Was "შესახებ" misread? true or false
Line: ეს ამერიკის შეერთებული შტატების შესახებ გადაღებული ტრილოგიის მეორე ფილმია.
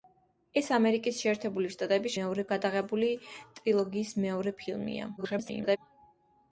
true